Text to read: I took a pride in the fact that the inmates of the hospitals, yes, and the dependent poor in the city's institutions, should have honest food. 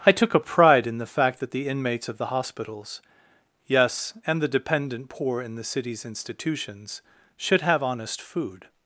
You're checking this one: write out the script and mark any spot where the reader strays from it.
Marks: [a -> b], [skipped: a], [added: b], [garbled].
I took a pride in the fact that the inmates of the hospitals, yes, and the dependent poor in the city's institutions, should have honest food.